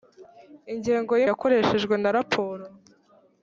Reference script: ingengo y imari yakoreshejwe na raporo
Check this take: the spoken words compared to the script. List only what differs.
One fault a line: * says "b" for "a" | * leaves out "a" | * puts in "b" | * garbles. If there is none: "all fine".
* leaves out "imari"